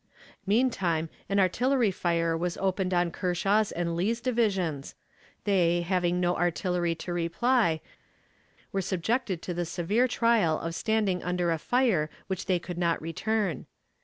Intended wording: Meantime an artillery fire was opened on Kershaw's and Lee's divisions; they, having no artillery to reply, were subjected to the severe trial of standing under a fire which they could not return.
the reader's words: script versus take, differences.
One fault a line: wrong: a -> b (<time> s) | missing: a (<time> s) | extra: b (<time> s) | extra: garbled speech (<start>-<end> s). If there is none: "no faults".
no faults